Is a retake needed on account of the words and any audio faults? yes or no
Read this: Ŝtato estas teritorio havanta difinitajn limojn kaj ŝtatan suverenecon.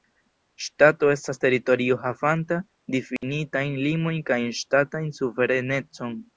yes